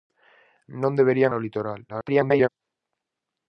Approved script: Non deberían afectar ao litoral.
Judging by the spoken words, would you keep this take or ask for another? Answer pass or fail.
fail